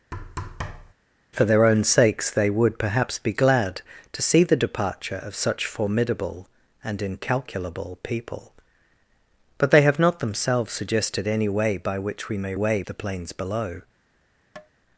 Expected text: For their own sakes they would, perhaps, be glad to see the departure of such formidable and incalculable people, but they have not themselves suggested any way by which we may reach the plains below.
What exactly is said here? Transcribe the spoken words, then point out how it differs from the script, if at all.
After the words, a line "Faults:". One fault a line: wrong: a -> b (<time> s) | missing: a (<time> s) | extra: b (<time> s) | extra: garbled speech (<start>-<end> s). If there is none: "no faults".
For their own sakes they would, perhaps, be glad to see the departure of such formidable and incalculable people, but they have not themselves suggested any way by which we may way the plains below.
Faults:
wrong: reach -> way (12.5 s)